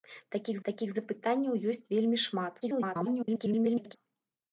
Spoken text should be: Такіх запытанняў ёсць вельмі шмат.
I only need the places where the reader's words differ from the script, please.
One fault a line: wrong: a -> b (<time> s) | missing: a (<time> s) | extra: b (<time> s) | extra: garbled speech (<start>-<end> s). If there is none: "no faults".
extra: такіх (0.7 s)
extra: garbled speech (2.6-4.0 s)